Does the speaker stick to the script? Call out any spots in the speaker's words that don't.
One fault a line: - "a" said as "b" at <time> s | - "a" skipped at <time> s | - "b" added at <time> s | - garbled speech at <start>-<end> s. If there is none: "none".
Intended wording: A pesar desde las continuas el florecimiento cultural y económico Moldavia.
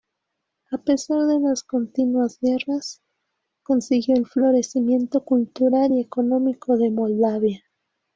- "desde" said as "de" at 1.3 s
- "guerras consiguió" added at 2.4 s
- "de" added at 6.8 s